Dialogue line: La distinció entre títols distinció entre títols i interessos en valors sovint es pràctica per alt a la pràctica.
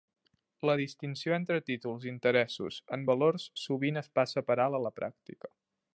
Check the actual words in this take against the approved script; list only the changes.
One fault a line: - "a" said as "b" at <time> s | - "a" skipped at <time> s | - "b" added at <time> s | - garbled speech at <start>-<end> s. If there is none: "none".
- "distinció entre títols" skipped at 2.1 s
- "pràctica" said as "passa" at 4.2 s